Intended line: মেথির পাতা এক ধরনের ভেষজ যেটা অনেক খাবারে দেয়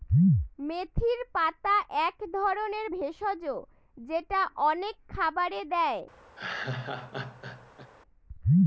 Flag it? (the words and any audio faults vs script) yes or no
yes